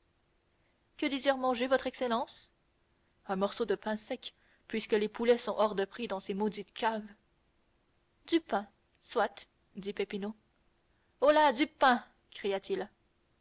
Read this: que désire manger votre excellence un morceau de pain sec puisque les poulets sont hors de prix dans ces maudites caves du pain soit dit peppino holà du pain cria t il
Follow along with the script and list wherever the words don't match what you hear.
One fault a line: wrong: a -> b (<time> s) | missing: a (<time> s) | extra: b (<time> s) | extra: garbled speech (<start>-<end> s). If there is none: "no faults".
no faults